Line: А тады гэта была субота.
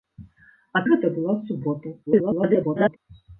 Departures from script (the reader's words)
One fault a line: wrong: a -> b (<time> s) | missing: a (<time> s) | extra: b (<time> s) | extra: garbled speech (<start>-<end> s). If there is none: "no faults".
missing: тады (0.8 s)
extra: garbled speech (2.1-3.0 s)